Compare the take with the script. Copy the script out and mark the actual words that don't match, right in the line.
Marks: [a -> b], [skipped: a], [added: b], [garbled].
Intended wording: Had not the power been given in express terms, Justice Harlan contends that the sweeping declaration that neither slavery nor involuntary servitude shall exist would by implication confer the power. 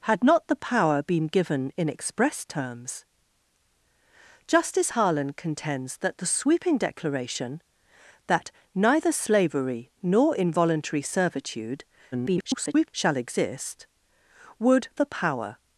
Had not the power been given in express terms, Justice Harlan contends that the sweeping declaration that neither slavery nor involuntary servitude [garbled] shall exist would [skipped: by implication confer] the power.